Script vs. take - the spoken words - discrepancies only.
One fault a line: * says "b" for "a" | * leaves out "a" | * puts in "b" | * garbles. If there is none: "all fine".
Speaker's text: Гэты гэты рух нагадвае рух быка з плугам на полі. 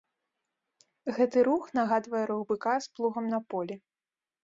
* leaves out "гэты"